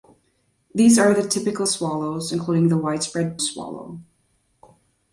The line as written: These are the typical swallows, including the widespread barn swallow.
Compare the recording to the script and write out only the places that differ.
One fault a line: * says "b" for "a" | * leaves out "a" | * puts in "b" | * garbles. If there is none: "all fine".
* leaves out "barn"